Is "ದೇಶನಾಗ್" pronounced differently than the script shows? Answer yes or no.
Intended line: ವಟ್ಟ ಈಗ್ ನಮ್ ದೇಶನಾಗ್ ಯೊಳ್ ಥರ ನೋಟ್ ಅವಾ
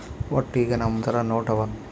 yes